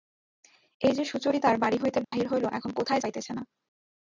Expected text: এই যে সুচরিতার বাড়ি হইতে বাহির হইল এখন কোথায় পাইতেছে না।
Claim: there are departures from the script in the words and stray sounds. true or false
true